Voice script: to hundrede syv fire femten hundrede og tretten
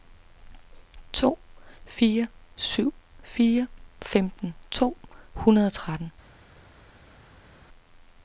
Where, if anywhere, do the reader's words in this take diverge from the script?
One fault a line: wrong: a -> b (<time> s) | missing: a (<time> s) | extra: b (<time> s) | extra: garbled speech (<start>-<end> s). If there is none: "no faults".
wrong: hundrede -> fire (1.8 s)
extra: to (4.7 s)